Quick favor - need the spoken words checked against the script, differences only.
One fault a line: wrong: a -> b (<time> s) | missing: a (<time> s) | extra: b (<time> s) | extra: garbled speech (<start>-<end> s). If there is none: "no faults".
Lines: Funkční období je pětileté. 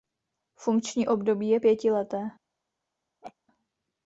no faults